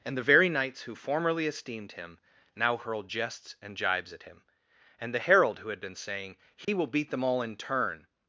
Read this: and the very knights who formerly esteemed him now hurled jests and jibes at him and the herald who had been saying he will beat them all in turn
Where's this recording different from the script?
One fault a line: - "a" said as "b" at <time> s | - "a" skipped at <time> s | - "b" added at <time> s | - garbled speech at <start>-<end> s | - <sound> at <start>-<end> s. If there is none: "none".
- dropout at 6.6-6.7 s